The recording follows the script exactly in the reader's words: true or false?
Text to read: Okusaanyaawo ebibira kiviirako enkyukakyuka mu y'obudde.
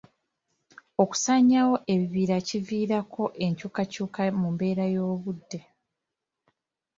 false